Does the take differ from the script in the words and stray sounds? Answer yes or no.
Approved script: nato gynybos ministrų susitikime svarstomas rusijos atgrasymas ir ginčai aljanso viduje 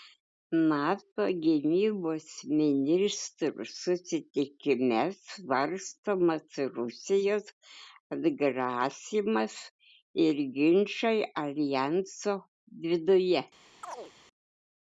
yes